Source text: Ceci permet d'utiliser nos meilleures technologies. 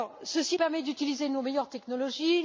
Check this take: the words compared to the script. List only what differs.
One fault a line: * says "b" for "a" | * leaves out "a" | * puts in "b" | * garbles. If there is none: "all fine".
all fine